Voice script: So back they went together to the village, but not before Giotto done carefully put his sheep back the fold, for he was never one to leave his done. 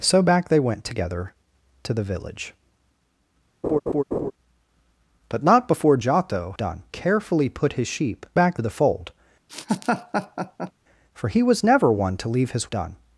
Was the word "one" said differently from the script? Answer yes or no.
no